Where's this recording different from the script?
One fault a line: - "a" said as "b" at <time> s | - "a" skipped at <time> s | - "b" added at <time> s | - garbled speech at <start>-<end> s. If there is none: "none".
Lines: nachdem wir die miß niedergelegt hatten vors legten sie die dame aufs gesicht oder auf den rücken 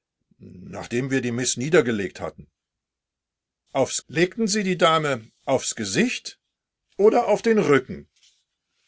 - "vors" said as "aufs" at 3.7 s